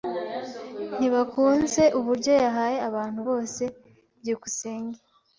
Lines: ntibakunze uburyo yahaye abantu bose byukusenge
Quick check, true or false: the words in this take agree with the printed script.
true